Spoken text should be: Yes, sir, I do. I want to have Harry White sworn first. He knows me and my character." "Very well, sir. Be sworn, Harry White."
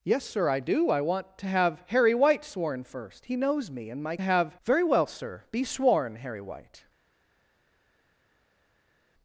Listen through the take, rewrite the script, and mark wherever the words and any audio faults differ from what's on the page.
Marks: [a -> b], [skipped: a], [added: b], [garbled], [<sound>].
Yes, sir, I do. I want to have Harry White sworn first. He knows me and my [character." -> have] "Very well, sir. Be sworn, Harry White."